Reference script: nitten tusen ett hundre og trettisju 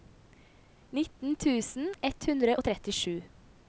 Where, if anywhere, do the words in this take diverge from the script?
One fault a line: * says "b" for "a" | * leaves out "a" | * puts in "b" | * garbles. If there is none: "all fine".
all fine